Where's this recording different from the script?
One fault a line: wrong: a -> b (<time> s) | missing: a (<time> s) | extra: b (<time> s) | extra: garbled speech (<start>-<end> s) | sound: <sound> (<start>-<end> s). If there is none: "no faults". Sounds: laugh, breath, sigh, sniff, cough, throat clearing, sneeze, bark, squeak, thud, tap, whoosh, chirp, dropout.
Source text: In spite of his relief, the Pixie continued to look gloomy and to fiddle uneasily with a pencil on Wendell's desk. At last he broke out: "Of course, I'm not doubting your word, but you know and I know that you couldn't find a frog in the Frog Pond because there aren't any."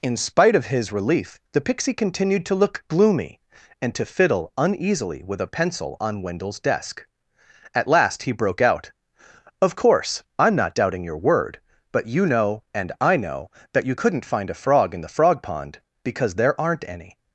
no faults